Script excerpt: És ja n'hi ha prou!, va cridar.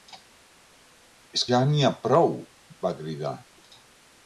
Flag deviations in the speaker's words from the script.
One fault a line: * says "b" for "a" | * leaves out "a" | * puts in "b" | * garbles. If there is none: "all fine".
all fine